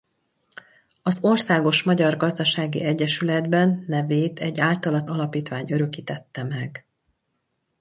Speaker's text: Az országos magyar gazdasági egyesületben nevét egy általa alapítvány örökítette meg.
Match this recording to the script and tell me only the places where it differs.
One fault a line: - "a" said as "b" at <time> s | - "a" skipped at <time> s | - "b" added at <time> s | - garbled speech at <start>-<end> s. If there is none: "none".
none